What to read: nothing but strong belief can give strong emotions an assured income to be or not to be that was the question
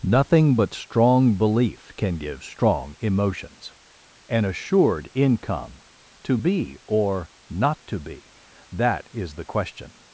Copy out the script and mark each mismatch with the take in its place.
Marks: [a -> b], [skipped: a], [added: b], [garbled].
nothing but strong belief can give strong emotions an assured income to be or not to be that [was -> is] the question